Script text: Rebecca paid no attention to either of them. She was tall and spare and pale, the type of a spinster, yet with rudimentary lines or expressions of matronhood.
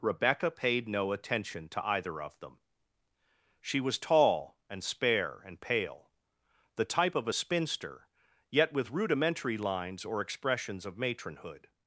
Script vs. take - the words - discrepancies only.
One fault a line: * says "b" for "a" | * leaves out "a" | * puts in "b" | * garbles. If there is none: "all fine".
all fine